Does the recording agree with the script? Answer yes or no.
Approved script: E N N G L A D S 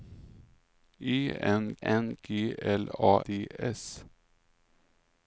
yes